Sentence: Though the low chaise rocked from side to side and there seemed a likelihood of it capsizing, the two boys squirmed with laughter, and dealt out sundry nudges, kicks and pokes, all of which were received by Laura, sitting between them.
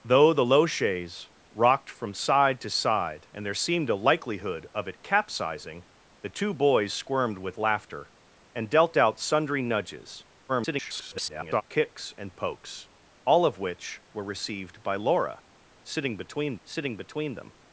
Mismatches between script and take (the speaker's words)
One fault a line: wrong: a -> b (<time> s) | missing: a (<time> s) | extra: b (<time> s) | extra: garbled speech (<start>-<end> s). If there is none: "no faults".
extra: garbled speech (10.5-11.6 s)
extra: sitting between (16.6 s)